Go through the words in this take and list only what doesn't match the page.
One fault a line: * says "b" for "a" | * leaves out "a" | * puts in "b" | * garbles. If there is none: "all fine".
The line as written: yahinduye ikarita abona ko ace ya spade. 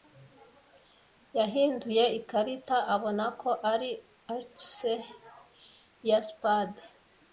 * puts in "ari"